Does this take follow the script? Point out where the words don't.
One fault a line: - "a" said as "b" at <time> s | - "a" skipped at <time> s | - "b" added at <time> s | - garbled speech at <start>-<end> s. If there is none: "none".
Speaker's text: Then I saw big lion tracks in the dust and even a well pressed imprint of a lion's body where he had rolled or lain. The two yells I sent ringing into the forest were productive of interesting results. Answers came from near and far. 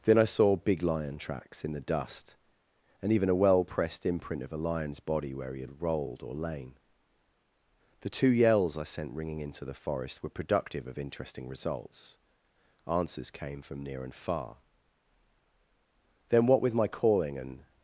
- "Then what with my calling and" added at 16.3 s